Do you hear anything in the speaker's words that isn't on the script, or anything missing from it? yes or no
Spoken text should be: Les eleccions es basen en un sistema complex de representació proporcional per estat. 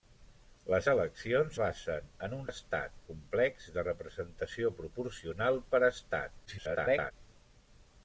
yes